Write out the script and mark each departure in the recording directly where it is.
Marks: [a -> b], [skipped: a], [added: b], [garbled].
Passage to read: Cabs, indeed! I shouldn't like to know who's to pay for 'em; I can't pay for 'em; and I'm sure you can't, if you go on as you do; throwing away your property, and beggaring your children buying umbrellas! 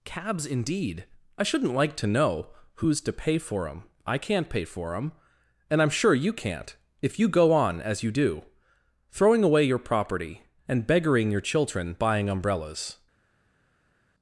Cabs, indeed! I shouldn't like to know who's to pay for 'em; I can't pay for 'em; and I'm sure you can't, if you go on as you do; throwing away your property, and beggaring your children buying umbrellas!